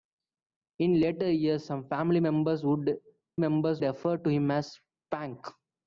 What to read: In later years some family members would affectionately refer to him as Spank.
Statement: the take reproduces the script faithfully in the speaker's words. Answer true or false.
false